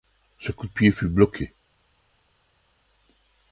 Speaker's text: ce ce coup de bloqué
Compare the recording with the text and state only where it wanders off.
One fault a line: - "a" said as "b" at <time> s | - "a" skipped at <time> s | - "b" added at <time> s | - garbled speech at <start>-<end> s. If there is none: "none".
- "ce" skipped at 0.5 s
- "pied fut" added at 0.7 s